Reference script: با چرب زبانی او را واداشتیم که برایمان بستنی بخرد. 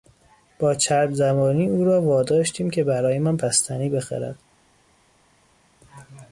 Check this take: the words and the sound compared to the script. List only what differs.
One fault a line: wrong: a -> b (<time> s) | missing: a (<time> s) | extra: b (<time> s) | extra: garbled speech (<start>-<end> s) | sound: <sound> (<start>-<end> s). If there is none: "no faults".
no faults